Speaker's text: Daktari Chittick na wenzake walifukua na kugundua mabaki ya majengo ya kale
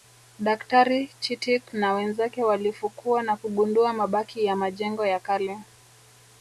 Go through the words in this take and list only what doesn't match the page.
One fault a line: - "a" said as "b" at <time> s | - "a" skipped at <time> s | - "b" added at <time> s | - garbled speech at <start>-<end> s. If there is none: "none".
none